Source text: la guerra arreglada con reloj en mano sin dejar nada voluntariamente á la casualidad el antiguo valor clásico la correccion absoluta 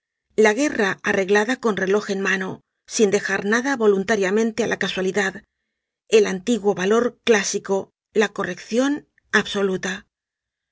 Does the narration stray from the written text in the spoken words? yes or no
no